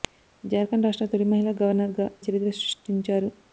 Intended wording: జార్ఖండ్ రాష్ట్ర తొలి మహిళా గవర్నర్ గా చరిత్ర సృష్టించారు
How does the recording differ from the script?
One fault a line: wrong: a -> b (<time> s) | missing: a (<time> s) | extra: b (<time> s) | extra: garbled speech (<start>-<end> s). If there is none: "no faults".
no faults